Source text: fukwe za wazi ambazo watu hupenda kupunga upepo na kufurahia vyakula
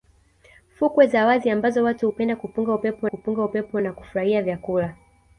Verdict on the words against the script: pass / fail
fail